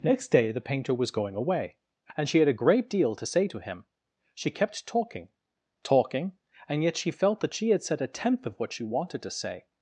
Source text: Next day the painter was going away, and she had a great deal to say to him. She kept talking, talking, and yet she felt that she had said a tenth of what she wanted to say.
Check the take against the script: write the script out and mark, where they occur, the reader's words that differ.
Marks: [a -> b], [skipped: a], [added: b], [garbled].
Next day the painter was going away, and she had a great deal to say to him. She kept talking, talking, and yet she felt that she had said a tenth of what she wanted to say.